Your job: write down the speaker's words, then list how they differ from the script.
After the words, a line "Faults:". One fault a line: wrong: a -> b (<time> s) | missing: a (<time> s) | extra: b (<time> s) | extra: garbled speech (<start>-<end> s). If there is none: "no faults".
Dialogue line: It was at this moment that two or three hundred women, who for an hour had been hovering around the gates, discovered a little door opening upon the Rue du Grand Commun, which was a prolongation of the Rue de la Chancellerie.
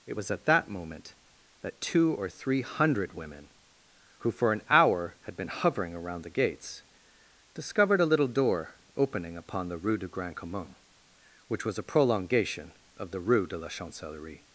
It was at that moment that two or three hundred women, who for an hour had been hovering around the gates, discovered a little door opening upon the Rue du Grand Commun, which was a prolongation of the Rue de la Chancellerie.
Faults:
wrong: this -> that (0.5 s)